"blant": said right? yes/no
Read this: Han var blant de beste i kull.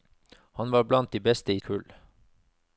yes